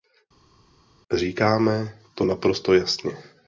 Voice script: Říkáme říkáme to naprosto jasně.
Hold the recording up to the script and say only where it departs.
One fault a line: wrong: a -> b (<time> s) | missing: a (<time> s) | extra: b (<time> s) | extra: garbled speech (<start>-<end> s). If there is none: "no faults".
missing: říkáme (2.0 s)